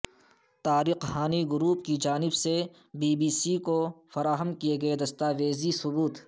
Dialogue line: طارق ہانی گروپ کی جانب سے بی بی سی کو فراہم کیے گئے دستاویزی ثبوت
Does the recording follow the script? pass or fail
pass